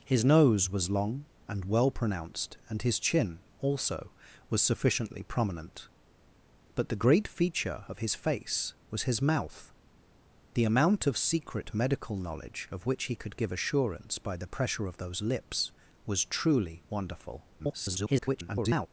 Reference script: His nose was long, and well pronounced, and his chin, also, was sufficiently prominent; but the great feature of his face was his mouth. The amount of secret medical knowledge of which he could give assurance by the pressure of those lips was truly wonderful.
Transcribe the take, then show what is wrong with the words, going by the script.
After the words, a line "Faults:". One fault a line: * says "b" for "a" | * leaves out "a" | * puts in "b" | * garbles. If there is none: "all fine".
His nose was long, and well pronounced, and his chin, also, was sufficiently prominent; but the great feature of his face was his mouth. The amount of secret medical knowledge of which he could give assurance by the pressure of those lips was truly wonderful. [garbled]
Faults:
* garbles